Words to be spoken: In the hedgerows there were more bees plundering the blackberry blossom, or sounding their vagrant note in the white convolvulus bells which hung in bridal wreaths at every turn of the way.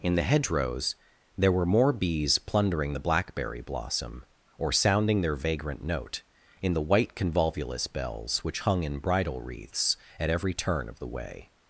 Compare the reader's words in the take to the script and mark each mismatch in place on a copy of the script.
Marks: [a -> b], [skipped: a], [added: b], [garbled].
In the hedgerows there were more bees plundering the blackberry blossom, or sounding their vagrant note in the white convolvulus bells which hung in bridal wreaths at every turn of the way.